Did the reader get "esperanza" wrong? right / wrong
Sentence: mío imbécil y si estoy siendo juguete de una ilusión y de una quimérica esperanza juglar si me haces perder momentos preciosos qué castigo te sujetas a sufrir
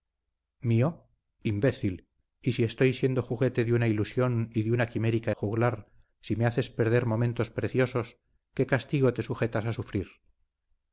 wrong